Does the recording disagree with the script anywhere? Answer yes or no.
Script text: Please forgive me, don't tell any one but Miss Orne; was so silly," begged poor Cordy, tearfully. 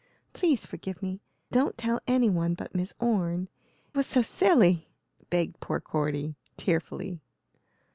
no